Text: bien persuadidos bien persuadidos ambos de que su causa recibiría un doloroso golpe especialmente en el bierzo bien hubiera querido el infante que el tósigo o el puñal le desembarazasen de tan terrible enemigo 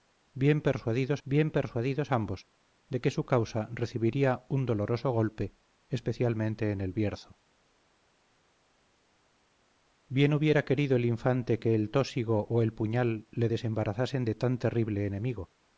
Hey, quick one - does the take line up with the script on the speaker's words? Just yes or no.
yes